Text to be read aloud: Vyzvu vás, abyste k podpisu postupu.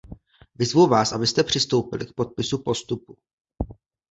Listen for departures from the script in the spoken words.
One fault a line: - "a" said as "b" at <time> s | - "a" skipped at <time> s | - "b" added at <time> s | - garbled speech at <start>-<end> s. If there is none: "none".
- "přistoupili" added at 1.4 s